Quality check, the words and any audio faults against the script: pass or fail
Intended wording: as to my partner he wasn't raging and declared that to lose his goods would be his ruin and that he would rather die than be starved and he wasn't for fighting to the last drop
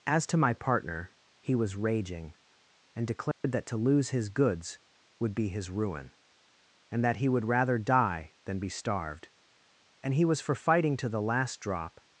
fail